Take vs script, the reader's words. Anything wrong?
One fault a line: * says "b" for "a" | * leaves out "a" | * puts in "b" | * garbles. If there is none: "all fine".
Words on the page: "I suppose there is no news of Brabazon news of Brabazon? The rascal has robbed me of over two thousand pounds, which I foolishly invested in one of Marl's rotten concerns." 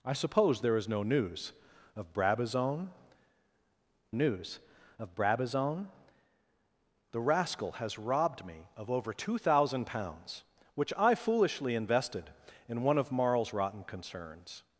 all fine